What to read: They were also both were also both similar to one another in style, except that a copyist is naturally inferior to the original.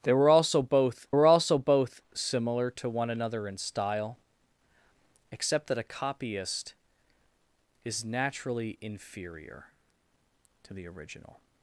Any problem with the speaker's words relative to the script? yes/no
no